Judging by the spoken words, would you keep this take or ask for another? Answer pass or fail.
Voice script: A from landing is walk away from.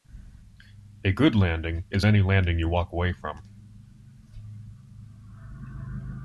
fail